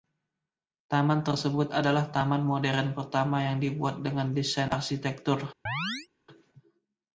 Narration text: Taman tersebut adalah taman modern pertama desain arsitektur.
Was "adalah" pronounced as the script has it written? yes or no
yes